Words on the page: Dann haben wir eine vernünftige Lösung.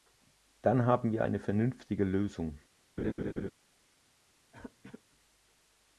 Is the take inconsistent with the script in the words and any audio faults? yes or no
yes